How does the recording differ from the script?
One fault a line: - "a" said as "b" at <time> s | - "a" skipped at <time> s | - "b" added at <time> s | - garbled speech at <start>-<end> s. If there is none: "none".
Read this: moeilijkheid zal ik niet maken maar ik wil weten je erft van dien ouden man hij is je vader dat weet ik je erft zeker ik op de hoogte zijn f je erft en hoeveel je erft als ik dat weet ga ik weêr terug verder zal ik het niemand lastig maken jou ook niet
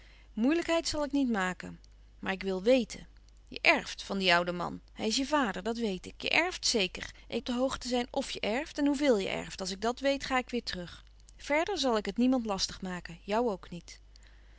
none